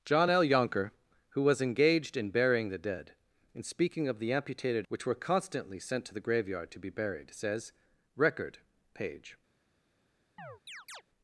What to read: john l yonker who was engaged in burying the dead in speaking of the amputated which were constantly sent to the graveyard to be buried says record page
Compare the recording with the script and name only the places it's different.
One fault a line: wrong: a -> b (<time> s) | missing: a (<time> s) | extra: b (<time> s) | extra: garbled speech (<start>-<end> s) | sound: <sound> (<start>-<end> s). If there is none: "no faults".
sound: chirp (10.4-11.0 s)